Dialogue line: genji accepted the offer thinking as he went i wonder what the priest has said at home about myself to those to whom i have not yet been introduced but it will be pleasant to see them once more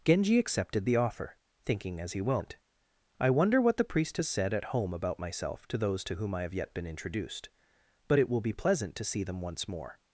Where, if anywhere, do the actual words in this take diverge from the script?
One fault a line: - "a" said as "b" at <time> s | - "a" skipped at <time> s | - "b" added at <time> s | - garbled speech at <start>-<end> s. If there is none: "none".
- "not" skipped at 6.5 s